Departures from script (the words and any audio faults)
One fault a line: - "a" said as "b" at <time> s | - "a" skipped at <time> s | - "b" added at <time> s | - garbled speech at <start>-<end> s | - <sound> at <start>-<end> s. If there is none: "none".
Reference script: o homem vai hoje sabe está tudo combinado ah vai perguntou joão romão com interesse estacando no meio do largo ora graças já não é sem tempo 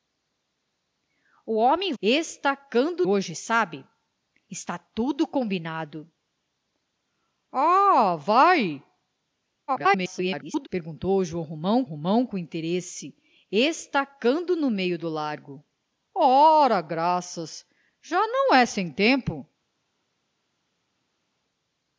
- "vai" said as "estacando" at 2.0 s
- garbled speech at 9.7-10.7 s
- "romão" added at 11.8 s